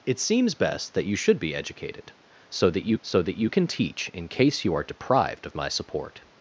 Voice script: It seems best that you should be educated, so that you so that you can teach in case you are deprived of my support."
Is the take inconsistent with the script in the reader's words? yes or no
no